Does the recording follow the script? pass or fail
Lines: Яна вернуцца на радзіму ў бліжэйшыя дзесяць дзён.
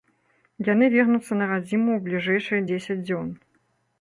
fail